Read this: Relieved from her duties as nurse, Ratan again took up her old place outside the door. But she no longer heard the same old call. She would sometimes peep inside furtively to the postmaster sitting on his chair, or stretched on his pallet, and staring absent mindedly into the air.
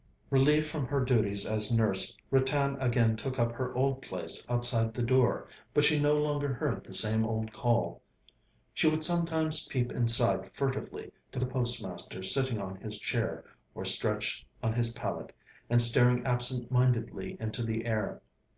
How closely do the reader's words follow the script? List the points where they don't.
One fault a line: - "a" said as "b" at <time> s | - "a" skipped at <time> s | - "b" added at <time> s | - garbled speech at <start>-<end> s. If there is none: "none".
none